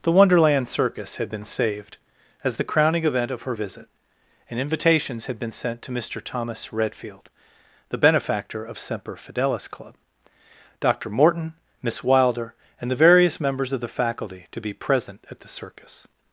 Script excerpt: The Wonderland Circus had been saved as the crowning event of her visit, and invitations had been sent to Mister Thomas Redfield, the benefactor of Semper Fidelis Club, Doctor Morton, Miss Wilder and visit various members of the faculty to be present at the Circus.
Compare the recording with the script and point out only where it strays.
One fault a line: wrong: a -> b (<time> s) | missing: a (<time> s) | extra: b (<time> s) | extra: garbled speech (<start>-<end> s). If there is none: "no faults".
wrong: visit -> the (12.9 s)